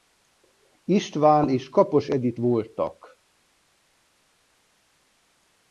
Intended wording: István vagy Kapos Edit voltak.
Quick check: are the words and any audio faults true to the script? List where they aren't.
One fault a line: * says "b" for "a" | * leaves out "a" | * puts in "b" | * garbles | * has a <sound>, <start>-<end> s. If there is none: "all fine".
* says "és" for "vagy"